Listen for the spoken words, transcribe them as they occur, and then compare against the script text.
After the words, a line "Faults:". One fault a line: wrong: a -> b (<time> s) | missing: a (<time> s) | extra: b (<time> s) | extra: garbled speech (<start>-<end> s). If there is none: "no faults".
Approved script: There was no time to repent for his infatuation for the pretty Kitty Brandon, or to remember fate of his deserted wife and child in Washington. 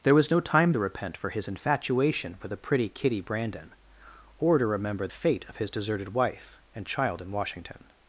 There was no time to repent for his infatuation for the pretty Kitty Brandon, or to remember fate of his deserted wife and child in Washington.
Faults:
no faults